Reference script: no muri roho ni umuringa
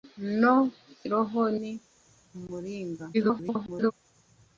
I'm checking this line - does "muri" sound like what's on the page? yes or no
no